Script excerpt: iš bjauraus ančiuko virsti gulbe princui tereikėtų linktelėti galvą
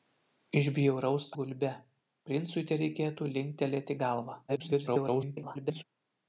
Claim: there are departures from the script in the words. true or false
true